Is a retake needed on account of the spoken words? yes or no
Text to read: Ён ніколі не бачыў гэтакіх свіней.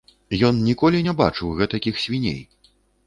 no